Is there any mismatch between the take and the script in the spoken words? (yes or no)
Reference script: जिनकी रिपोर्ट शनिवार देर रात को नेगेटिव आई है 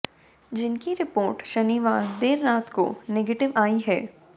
no